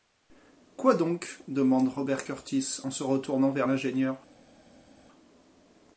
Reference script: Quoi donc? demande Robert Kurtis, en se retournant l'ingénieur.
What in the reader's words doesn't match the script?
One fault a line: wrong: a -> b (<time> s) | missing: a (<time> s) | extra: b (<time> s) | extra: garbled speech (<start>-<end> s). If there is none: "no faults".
extra: vers (3.5 s)